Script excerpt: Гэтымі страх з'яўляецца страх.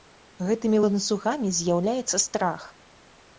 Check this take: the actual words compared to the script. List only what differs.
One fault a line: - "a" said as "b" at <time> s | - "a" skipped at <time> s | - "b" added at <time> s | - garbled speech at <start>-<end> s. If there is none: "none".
- "страх" said as "ланцугамі" at 0.8 s